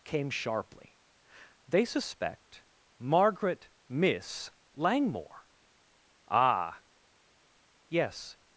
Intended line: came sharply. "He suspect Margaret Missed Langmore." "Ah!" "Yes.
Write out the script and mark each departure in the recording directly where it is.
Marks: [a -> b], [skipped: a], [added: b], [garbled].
came sharply. ["He -> They] suspect Margaret [Missed -> Miss] Langmore." "Ah!" "Yes.